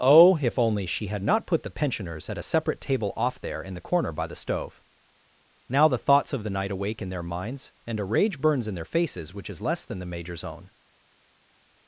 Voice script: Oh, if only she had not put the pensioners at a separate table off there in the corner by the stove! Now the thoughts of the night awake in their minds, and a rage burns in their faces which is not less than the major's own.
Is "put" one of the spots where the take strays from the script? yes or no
no